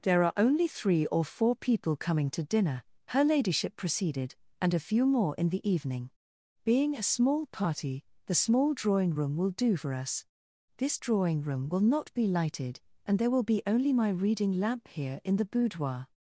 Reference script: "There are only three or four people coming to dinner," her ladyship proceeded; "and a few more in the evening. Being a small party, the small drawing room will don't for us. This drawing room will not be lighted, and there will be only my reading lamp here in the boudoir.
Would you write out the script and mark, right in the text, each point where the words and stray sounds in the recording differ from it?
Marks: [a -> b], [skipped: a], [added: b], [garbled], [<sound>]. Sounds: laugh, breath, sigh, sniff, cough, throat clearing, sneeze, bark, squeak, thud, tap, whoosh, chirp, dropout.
"There are only three or four people coming to dinner," her ladyship proceeded; "and a few more in the evening. Being a small party, the small drawing room will [don't -> do] for us. This drawing room will not be lighted, and there will be only my reading lamp here in the boudoir.